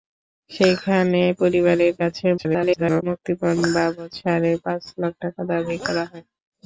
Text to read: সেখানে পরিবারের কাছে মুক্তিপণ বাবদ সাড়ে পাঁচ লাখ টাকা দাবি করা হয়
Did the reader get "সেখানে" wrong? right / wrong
right